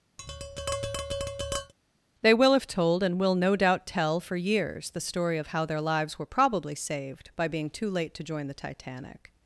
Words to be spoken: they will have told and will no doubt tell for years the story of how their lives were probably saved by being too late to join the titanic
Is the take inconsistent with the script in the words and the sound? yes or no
yes